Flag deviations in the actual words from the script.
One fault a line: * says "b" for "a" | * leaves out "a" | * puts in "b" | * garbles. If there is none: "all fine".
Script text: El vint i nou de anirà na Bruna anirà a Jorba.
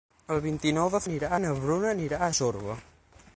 all fine